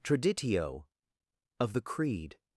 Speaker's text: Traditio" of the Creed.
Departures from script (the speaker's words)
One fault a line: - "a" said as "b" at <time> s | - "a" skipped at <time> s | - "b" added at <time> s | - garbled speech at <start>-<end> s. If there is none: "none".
none